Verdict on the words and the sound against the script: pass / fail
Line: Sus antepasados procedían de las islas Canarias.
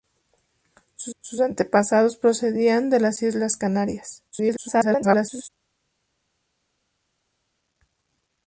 fail